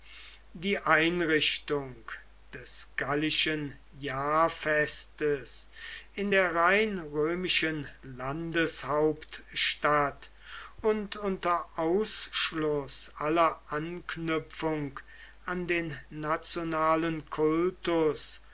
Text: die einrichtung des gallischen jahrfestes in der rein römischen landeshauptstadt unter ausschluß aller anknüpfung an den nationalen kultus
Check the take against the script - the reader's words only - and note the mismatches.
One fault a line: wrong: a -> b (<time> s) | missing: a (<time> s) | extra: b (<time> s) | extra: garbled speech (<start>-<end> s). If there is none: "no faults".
extra: und (10.8 s)